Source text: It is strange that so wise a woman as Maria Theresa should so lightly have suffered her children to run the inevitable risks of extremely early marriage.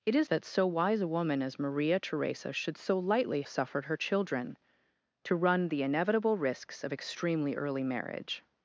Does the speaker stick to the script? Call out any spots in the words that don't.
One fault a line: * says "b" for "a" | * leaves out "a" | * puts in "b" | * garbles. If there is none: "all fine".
* leaves out "strange"
* leaves out "have"